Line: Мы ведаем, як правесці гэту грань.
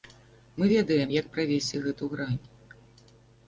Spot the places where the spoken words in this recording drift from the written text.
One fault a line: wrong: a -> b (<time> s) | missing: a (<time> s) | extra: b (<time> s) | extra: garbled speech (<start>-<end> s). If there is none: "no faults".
no faults